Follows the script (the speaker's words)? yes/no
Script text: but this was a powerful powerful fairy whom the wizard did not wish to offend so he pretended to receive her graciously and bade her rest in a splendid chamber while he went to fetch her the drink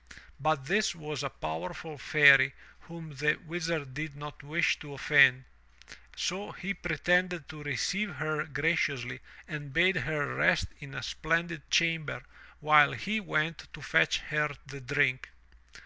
no